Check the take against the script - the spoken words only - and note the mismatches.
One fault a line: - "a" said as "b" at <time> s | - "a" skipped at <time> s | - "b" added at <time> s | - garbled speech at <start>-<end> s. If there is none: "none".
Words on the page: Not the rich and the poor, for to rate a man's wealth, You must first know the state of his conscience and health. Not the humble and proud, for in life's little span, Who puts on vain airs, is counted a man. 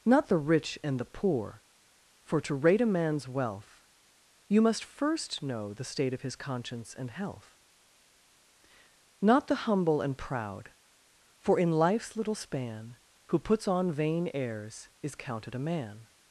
none